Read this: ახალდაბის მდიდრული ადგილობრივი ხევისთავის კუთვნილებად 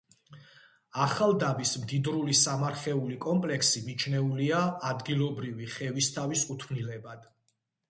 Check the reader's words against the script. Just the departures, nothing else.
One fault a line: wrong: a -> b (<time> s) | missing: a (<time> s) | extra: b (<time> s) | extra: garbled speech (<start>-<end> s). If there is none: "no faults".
extra: სამარხეული კომპლექსი მიჩნეულია (2.4 s)